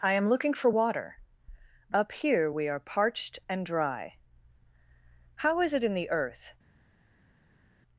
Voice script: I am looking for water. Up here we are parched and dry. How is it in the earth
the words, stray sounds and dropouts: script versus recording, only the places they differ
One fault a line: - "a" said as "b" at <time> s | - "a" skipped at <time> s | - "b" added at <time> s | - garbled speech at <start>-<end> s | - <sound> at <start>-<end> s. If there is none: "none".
none